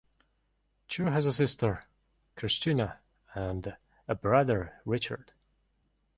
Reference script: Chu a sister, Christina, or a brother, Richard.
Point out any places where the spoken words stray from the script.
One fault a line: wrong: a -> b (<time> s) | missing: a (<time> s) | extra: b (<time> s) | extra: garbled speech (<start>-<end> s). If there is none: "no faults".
extra: has (1.0 s)
wrong: or -> and (3.3 s)